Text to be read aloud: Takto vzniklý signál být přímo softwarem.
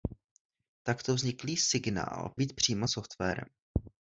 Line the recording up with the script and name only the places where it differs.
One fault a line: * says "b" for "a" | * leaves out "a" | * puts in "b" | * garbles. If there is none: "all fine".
all fine